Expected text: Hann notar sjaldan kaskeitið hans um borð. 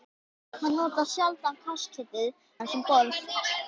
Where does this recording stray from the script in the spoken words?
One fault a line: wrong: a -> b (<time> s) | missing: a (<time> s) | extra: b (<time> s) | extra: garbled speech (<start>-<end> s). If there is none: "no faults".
no faults